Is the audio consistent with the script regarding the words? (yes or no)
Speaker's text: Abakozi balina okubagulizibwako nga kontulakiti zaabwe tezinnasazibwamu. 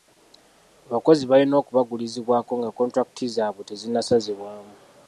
yes